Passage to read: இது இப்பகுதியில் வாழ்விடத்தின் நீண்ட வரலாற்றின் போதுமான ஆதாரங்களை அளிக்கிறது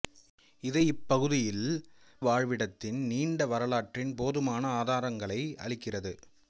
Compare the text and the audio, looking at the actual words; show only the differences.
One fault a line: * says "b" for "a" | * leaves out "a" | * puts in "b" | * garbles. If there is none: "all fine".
all fine